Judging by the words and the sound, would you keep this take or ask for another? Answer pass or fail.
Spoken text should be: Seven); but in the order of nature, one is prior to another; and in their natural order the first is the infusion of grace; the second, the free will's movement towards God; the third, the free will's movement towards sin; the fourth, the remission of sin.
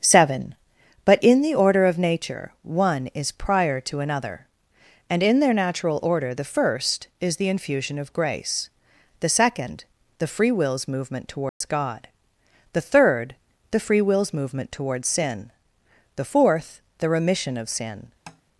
fail